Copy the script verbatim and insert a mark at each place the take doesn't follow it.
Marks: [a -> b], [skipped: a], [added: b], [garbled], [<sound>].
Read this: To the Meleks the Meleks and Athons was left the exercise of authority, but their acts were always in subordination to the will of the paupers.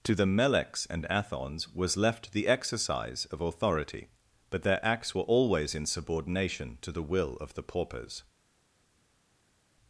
To the Meleks [skipped: the Meleks] and Athons was left the exercise of authority, but their acts were always in subordination to the will of the paupers.